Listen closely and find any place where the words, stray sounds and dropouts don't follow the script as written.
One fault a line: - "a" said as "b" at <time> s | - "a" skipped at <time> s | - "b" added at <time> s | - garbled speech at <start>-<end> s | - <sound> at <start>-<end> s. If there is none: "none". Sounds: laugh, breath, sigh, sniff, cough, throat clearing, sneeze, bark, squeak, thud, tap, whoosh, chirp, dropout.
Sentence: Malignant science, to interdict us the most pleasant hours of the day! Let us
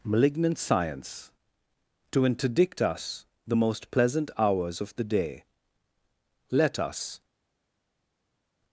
none